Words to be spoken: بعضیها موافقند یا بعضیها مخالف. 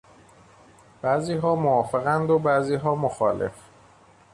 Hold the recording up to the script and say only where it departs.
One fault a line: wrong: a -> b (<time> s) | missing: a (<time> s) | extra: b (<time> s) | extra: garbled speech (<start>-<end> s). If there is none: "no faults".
wrong: یا -> و (2.3 s)